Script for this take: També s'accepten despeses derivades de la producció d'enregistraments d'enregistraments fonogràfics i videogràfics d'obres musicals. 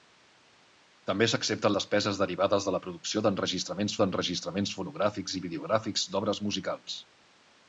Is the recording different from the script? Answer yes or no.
no